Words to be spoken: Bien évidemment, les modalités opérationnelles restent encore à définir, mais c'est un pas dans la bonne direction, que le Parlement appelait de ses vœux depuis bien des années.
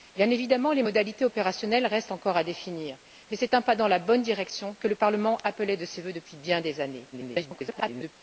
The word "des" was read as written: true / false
true